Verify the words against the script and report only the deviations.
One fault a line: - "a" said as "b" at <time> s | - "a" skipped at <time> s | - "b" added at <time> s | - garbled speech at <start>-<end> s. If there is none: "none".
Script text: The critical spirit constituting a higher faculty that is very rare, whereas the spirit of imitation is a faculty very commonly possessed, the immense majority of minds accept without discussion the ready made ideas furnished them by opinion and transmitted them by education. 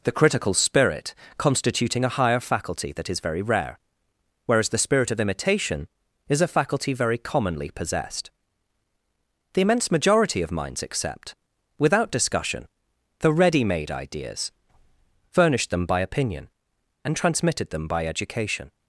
none